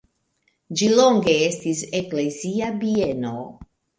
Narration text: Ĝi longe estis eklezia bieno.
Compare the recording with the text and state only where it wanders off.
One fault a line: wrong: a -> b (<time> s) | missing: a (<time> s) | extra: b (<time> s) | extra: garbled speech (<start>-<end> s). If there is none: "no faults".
no faults